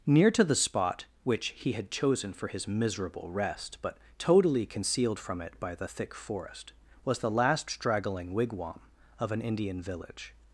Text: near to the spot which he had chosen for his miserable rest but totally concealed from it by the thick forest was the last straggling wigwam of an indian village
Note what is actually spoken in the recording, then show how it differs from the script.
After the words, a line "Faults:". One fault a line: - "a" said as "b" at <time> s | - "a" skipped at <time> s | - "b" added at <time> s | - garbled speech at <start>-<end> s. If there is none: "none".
near to the spot which he had chosen for his miserable rest but totally concealed from it by the thick forest was the last straggling wigwam of an indian village
Faults:
none